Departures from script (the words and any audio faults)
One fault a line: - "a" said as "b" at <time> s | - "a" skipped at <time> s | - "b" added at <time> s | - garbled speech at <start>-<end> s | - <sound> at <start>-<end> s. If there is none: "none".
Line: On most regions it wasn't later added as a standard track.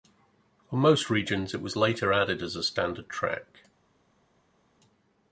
- "wasn't" said as "was" at 1.6 s